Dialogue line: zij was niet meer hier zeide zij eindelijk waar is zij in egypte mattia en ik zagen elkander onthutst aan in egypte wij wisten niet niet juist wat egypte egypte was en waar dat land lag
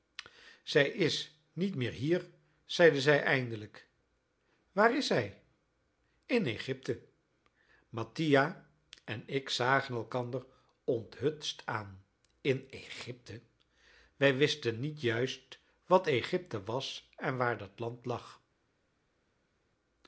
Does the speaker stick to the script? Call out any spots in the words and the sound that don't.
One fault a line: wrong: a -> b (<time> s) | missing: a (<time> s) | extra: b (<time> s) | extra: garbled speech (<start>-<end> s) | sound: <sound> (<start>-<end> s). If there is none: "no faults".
wrong: was -> is (0.9 s)
missing: niet (15.0 s)
missing: egypte (16.6 s)